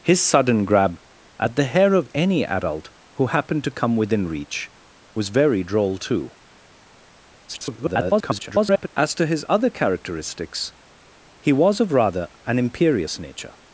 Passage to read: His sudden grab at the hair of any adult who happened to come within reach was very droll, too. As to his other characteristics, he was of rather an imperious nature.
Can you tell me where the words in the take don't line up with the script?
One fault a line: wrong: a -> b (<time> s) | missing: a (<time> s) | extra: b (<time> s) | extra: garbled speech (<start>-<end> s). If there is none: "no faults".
extra: garbled speech (7.5-8.9 s)